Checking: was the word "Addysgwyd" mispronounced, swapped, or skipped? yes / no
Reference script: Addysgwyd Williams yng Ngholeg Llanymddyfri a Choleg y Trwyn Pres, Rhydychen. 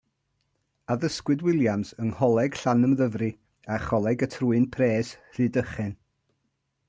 no